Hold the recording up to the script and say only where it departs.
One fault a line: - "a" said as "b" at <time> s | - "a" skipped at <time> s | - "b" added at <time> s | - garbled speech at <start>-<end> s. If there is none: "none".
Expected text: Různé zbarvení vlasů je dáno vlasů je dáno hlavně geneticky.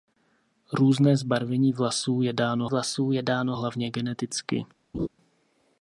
none